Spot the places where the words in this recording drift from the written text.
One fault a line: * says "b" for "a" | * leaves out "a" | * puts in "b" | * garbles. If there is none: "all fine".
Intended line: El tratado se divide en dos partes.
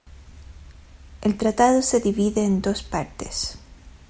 all fine